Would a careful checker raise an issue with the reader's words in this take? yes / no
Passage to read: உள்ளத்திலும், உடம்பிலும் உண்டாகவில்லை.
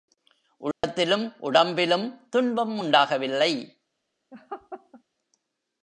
yes